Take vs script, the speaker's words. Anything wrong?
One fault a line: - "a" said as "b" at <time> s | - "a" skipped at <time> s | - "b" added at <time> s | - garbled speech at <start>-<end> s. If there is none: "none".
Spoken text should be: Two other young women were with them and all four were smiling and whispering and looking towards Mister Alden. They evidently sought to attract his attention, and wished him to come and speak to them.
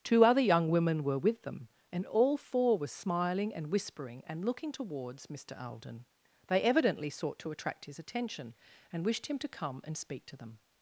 none